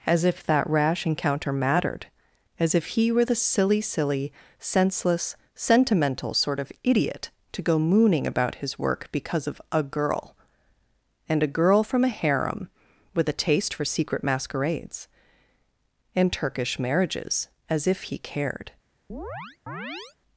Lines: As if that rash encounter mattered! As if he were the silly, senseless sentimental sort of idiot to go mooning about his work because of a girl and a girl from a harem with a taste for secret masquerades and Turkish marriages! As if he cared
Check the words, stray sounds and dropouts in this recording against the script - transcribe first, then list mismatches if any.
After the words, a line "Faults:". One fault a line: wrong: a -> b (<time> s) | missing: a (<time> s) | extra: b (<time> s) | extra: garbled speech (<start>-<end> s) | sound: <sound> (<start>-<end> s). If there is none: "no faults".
As if that rash encounter mattered! As if he were the silly silly, senseless sentimental sort of idiot to go mooning about his work because of a girl and a girl from a harem with a taste for secret masquerades and Turkish marriages! As if he cared
Faults:
extra: silly (3.8 s)
sound: chirp (19.1-20.2 s)